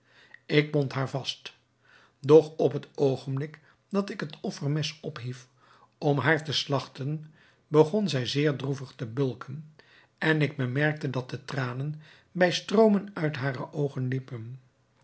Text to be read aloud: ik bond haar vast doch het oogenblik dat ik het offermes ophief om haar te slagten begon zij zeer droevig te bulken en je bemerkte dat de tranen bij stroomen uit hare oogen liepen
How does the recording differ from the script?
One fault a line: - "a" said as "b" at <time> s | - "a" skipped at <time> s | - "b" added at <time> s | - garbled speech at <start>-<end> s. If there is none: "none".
- "op" added at 2.6 s
- "je" said as "ik" at 10.4 s